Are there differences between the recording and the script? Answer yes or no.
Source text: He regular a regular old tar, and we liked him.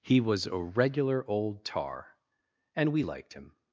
yes